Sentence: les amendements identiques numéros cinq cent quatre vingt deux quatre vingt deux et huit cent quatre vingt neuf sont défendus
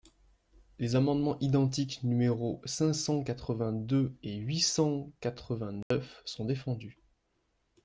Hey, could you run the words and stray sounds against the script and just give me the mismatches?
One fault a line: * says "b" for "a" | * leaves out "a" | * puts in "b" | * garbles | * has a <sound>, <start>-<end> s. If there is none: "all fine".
* leaves out "quatre vingt deux"
* has a dropout, 5.8-5.9 s